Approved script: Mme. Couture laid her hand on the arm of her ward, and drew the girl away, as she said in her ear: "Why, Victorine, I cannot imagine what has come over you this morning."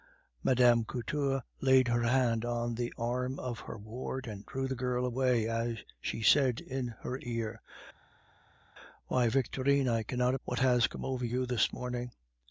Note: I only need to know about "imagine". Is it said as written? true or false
false